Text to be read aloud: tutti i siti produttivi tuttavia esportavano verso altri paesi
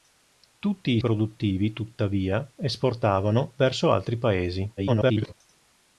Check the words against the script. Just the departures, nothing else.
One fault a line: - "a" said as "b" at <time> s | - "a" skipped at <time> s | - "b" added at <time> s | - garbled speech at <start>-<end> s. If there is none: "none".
- "siti" skipped at 1.0 s
- garbled speech at 4.8-5.3 s